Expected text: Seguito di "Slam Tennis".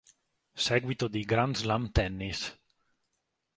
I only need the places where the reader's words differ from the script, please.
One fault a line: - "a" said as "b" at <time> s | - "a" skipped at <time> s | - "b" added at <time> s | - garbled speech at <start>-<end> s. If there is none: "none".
- "Grand" added at 1.2 s